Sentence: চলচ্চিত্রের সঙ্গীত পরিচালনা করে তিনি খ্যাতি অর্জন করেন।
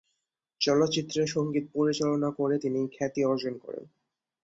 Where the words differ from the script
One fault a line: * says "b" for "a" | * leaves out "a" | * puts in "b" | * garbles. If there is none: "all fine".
all fine